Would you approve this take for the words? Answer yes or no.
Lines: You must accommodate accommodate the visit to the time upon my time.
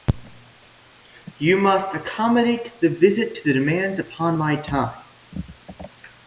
no